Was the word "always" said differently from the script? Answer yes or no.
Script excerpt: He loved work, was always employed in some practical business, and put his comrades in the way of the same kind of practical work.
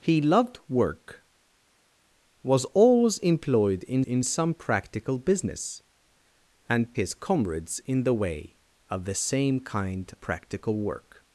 no